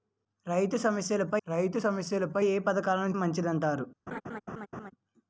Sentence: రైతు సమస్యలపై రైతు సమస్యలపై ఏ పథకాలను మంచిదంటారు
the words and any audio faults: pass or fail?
fail